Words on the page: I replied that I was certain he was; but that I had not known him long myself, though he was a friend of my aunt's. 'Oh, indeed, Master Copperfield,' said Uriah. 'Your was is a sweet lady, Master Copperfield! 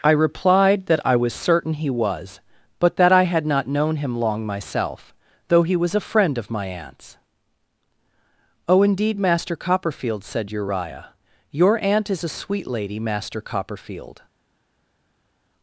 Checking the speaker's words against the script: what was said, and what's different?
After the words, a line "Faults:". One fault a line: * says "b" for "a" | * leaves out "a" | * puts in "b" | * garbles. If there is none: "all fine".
I replied that I was certain he was; but that I had not known him long myself, though he was a friend of my aunt's. 'Oh, indeed, Master Copperfield,' said Uriah. 'Your aunt is a sweet lady, Master Copperfield!
Faults:
* says "aunt" for "was"